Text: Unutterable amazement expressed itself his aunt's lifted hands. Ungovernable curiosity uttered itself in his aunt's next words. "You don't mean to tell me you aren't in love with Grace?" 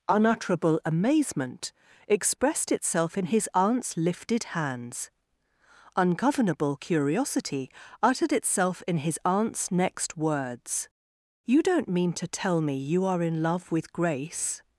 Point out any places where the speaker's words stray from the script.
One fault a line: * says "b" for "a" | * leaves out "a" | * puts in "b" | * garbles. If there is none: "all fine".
* puts in "in"
* says "are" for "aren't"